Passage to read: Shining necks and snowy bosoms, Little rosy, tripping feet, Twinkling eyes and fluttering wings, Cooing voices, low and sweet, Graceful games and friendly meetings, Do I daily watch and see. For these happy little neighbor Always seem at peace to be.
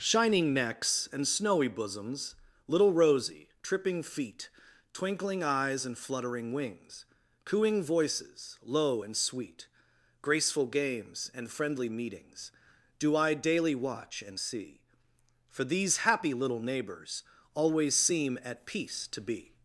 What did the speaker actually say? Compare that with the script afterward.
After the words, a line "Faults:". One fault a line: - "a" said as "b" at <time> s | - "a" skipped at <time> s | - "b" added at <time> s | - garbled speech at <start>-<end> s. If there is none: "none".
Shining necks and snowy bosoms, Little rosy, tripping feet, Twinkling eyes and fluttering wings, Cooing voices, low and sweet, Graceful games and friendly meetings, Do I daily watch and see. For these happy little neighbors Always seem at peace to be.
Faults:
- "neighbor" said as "neighbors" at 16.6 s